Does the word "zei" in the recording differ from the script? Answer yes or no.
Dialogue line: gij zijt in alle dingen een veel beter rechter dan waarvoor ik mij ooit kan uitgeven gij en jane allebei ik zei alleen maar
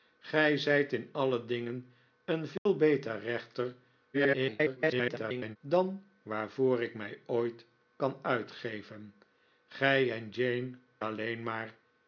yes